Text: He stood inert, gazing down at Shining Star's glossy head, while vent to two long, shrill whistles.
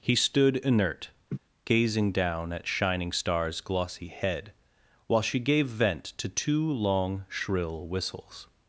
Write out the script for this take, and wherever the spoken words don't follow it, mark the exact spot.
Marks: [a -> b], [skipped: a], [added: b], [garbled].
He stood inert, gazing down at Shining Star's glossy head, while [added: she gave] vent to two long, shrill whistles.